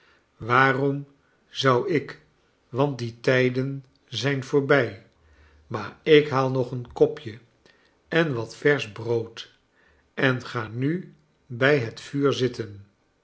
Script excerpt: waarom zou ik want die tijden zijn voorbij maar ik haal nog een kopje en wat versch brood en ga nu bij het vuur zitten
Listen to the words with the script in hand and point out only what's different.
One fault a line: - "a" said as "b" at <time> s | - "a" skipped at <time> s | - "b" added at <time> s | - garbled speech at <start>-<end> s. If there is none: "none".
none